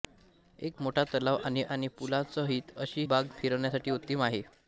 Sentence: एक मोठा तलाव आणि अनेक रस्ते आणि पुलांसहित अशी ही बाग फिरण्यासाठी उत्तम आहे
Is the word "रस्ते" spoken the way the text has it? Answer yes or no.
no